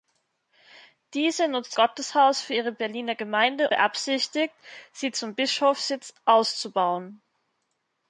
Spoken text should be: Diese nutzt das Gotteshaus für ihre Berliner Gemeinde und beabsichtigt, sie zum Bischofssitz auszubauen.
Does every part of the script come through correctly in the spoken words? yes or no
no